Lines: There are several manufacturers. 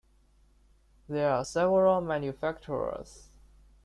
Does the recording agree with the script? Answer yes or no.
yes